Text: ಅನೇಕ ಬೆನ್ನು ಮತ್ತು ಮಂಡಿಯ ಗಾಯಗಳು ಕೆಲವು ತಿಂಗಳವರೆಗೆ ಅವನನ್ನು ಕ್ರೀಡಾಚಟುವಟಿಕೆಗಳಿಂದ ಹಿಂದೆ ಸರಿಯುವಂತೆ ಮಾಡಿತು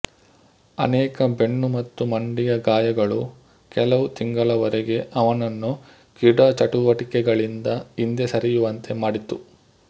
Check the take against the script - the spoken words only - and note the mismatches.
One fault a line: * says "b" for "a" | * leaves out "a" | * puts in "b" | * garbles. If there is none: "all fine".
all fine